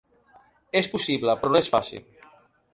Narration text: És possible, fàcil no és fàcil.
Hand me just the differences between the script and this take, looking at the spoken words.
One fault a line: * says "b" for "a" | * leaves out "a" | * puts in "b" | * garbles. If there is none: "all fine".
* says "però" for "fàcil"